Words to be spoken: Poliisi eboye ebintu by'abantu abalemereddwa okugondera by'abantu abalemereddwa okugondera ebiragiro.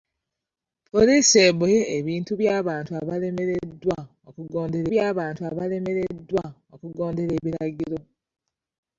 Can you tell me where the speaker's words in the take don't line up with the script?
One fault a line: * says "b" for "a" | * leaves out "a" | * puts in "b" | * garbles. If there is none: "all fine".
all fine